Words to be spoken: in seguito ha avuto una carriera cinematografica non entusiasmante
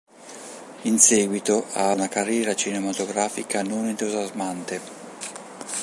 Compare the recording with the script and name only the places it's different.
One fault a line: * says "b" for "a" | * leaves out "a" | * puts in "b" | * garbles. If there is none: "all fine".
* leaves out "avuto"